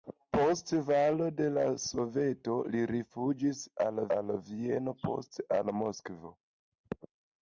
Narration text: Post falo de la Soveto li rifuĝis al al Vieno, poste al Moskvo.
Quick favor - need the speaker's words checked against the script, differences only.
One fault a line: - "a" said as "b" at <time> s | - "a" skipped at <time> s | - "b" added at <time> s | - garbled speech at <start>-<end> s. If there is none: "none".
none